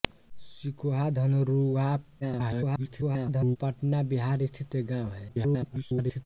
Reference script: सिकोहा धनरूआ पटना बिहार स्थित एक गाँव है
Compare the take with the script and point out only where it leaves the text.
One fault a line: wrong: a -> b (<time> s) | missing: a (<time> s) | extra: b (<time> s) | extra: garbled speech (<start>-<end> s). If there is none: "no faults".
extra: garbled speech (2.2-3.6 s)
extra: garbled speech (5.3-6.3 s)